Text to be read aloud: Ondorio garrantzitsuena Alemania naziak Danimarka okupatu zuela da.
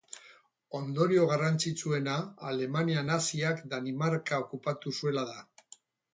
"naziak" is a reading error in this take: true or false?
false